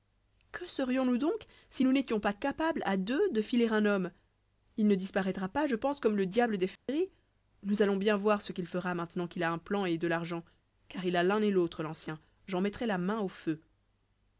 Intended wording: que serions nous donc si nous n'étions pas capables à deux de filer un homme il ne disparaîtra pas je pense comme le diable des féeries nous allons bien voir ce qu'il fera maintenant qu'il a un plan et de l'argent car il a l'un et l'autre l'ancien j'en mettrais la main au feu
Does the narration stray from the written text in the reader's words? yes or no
no